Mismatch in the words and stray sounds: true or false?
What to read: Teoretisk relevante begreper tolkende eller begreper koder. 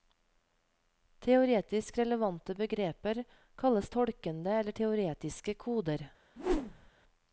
true